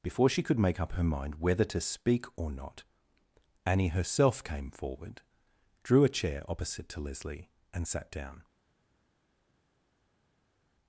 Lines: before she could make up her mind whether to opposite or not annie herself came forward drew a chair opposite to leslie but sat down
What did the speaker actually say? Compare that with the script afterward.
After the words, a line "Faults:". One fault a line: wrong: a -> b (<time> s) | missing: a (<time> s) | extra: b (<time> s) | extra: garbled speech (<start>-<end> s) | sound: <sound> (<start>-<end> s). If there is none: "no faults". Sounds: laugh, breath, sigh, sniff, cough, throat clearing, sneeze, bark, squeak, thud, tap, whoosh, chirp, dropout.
before she could make up her mind whether to speak or not annie herself came forward drew a chair opposite to leslie and sat down
Faults:
wrong: opposite -> speak (1.8 s)
wrong: but -> and (7.7 s)